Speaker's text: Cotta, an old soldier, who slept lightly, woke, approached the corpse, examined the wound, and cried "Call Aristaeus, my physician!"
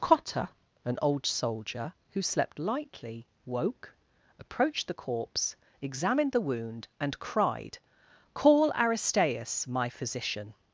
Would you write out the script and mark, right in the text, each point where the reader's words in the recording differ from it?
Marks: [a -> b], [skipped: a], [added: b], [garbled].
Cotta, an old soldier, who slept lightly, woke, approached the corpse, examined the wound, and cried "Call Aristaeus, my physician!"